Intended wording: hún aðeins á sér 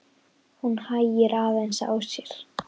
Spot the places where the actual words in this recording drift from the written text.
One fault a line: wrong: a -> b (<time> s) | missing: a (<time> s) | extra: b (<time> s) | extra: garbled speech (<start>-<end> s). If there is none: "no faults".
extra: hægir (0.9 s)